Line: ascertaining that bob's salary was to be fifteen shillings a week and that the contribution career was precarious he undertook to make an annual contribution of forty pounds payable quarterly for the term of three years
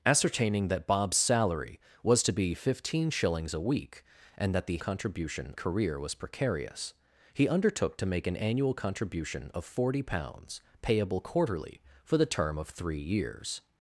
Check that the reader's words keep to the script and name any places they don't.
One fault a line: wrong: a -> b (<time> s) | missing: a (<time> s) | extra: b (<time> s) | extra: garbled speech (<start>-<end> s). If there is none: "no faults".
no faults